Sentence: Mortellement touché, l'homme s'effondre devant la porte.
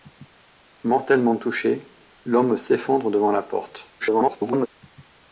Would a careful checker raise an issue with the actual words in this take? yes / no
yes